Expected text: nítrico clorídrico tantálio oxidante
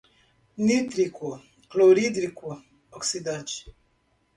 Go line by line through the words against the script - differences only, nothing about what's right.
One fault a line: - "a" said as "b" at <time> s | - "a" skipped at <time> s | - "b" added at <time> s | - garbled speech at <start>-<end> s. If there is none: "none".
- "tantálio" skipped at 2.6 s